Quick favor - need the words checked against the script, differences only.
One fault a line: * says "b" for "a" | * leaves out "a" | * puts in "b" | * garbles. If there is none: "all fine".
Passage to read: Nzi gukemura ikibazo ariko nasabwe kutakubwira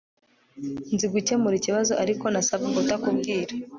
all fine